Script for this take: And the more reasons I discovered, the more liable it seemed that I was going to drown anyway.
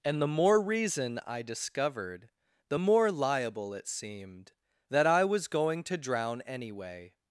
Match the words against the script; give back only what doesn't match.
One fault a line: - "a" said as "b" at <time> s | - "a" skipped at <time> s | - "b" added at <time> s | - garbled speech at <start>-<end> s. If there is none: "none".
- "reasons" said as "reason" at 0.6 s